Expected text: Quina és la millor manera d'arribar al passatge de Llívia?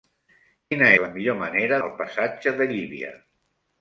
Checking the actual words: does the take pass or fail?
fail